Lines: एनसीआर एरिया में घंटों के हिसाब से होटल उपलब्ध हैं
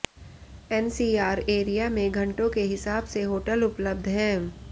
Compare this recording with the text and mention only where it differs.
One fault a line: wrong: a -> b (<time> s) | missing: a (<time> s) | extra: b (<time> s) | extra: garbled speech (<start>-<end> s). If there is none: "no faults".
no faults